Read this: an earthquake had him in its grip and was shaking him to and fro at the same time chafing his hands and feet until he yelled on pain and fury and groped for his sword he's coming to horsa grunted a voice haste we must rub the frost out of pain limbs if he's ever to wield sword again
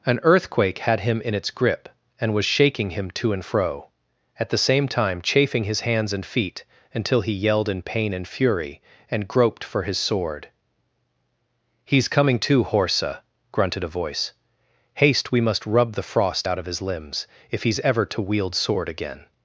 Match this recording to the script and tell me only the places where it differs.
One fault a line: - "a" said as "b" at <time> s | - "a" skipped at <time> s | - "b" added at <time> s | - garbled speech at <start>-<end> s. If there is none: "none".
- "on" said as "in" at 7.7 s
- "pain" said as "his" at 16.7 s